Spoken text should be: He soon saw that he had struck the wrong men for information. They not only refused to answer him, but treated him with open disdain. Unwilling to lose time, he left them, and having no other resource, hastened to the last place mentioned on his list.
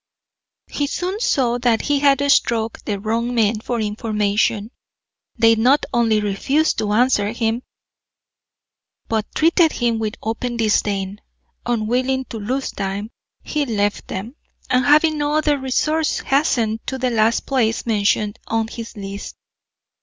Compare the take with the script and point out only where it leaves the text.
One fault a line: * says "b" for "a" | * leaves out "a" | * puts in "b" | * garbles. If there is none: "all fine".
all fine